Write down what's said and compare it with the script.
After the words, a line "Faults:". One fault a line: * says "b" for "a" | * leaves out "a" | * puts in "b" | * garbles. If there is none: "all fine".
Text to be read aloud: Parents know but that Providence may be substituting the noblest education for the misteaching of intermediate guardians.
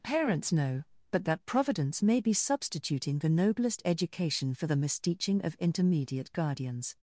Parents know but that Providence may be substituting the noblest education for the misteaching of intermediate guardians.
Faults:
all fine